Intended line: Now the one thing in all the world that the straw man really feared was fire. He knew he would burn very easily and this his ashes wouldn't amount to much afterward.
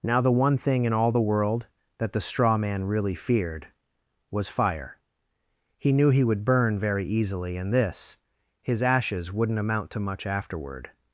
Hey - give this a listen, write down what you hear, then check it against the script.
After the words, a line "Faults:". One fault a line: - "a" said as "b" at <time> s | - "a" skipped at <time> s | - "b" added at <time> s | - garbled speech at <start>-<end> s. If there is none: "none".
Now the one thing in all the world that the straw man really feared was fire. He knew he would burn very easily and this his ashes wouldn't amount to much afterward.
Faults:
none